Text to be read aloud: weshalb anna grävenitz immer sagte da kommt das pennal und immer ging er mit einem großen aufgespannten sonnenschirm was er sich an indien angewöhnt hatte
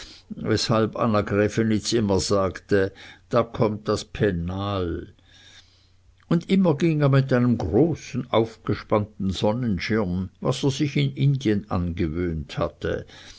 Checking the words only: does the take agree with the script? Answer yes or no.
no